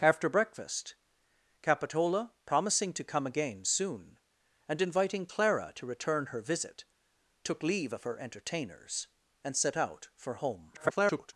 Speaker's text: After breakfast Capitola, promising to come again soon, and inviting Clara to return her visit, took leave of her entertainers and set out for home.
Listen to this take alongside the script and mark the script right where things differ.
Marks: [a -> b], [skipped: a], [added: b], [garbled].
After breakfast Capitola, promising to come again soon, and inviting Clara to return her visit, took leave of her entertainers and set out for home. [garbled]